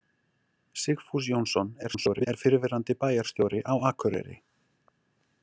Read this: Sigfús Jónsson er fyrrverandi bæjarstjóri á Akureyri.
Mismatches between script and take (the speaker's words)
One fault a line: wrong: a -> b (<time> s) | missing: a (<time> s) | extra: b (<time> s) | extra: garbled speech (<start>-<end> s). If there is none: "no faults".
extra: garbled speech (1.8-2.3 s)